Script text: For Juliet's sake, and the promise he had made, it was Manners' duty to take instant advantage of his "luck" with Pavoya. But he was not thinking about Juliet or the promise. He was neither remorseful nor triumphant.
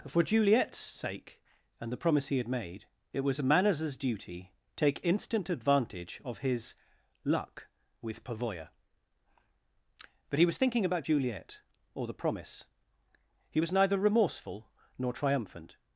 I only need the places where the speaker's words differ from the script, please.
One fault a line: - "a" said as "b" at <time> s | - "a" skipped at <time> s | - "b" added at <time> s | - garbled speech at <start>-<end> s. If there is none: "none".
- "to" skipped at 4.5 s
- "not" skipped at 10.6 s